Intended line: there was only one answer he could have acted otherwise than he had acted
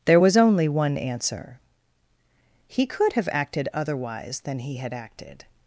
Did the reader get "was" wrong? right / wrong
right